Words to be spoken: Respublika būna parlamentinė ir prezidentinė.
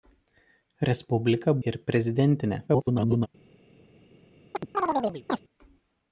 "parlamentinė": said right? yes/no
no